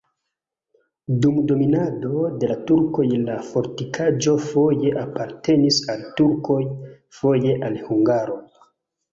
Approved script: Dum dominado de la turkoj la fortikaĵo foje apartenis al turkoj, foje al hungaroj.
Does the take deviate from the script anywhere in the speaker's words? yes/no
no